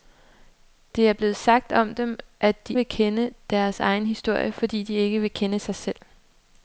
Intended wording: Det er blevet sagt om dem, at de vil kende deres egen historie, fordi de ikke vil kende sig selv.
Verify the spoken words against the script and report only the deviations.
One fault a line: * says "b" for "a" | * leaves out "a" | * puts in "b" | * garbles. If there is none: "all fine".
all fine